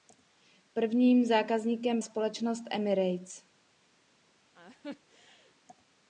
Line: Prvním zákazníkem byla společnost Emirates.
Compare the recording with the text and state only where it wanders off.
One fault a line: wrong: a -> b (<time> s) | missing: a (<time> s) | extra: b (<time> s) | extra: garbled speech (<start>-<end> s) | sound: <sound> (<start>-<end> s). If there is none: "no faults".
missing: byla (2.0 s)
sound: laugh (4.5-5.6 s)